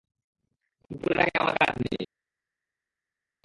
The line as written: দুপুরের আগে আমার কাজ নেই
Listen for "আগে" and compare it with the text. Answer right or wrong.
right